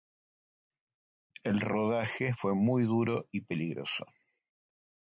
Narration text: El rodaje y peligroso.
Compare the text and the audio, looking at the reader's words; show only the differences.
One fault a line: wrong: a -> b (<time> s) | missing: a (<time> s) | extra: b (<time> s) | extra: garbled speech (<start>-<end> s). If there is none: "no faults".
extra: fue muy duro (2.3 s)